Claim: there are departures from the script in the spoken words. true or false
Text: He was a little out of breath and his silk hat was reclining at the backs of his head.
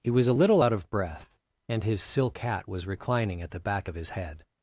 true